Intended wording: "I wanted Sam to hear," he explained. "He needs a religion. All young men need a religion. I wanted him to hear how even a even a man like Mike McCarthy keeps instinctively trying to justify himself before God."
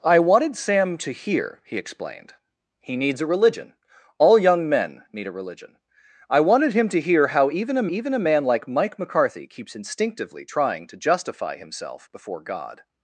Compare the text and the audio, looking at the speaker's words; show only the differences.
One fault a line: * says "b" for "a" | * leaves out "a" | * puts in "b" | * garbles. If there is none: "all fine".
all fine